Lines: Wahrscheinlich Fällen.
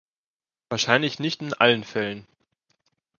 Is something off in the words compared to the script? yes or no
yes